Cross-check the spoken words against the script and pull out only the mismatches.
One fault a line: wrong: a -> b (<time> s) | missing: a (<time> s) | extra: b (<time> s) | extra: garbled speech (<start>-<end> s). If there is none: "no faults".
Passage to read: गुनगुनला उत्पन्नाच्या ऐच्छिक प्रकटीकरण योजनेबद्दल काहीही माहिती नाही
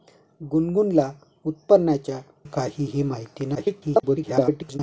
missing: ऐच्छिक प्रकटीकरण योजनेबद्दल (2.2 s)
extra: garbled speech (3.5-4.8 s)